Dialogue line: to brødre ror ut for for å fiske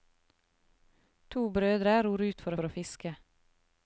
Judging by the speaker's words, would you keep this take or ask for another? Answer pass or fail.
pass